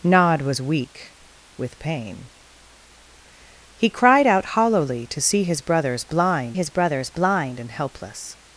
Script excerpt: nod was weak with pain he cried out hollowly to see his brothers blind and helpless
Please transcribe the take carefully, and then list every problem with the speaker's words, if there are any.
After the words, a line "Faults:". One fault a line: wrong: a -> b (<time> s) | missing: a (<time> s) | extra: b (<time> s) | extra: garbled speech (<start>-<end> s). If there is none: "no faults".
nod was weak with pain he cried out hollowly to see his brothers blind his brothers blind and helpless
Faults:
extra: his brothers blind (6.5 s)